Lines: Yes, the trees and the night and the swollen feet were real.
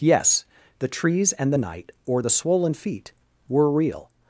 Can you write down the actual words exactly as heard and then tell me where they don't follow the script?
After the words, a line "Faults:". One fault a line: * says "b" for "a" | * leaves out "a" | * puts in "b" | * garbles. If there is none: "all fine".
Yes, the trees and the night or the swollen feet were real.
Faults:
* says "or" for "and"